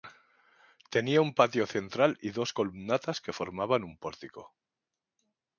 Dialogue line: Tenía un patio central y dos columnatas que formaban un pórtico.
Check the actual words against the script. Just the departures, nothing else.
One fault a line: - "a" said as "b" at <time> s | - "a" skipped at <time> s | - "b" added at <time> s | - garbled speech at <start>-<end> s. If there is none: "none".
none